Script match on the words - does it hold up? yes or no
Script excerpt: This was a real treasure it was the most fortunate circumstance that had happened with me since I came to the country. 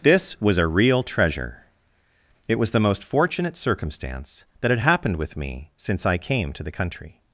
yes